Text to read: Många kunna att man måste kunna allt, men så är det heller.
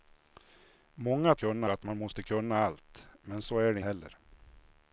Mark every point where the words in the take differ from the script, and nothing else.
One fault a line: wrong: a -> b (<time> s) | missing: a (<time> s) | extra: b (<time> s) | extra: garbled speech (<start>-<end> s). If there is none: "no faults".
no faults